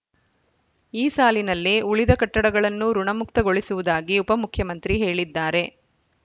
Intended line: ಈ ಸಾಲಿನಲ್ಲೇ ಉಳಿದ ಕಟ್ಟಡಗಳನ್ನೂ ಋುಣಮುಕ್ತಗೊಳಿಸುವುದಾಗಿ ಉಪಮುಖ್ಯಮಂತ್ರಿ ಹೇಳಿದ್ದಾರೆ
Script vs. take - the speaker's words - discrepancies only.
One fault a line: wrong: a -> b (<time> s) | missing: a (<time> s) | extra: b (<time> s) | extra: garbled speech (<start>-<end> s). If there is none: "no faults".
no faults